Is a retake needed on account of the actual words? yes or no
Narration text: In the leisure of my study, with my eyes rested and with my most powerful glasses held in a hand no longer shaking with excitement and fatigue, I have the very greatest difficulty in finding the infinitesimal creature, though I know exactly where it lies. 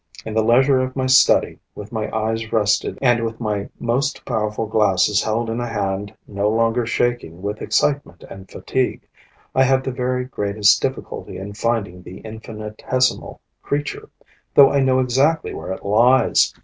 no